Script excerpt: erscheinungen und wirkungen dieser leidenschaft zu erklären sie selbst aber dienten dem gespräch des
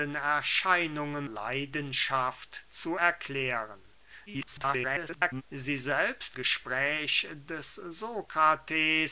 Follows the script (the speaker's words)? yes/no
no